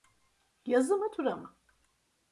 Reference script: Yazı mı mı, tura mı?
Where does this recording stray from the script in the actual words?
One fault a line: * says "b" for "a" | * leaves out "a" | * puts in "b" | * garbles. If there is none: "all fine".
* leaves out "mı"